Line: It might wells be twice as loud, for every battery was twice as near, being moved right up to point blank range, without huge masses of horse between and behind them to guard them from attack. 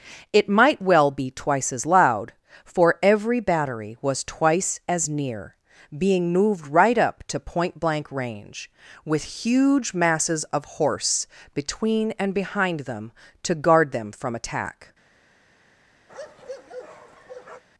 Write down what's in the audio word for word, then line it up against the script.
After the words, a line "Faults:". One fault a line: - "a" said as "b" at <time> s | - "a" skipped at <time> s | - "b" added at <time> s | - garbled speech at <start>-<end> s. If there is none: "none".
It might well be twice as loud, for every battery was twice as near, being moved right up to point blank range, with huge masses of horse between and behind them to guard them from attack.
Faults:
- "wells" said as "well" at 0.8 s
- "without" said as "with" at 9.1 s